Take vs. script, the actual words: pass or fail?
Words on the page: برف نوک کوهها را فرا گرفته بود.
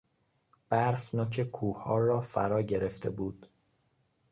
pass